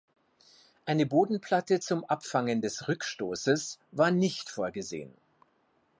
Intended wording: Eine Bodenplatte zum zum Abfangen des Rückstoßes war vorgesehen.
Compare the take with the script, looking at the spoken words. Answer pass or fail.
fail